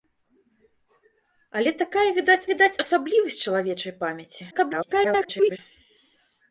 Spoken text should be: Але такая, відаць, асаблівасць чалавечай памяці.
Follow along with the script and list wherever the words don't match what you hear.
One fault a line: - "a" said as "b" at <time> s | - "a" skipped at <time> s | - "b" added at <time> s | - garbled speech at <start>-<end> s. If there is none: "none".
- "відаць" added at 2.5 s
- garbled speech at 4.5-5.6 s